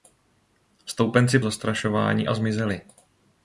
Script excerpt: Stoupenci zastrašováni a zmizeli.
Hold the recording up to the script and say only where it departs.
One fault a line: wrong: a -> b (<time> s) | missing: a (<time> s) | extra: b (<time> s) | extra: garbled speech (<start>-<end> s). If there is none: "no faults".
no faults